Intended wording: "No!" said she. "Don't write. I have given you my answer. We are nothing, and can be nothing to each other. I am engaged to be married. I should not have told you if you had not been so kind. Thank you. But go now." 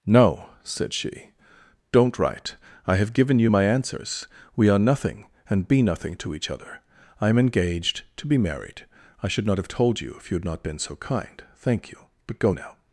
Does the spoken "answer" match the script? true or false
false